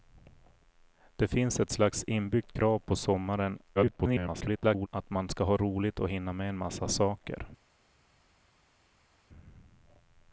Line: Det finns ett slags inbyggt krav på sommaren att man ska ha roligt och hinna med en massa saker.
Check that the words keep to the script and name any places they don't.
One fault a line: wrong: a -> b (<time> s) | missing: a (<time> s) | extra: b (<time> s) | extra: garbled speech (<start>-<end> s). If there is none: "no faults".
extra: garbled speech (3.8-4.9 s)